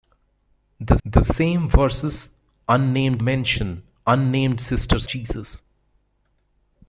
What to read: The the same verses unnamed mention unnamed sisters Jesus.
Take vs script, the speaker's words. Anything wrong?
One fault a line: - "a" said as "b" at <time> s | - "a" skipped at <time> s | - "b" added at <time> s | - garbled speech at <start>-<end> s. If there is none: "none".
none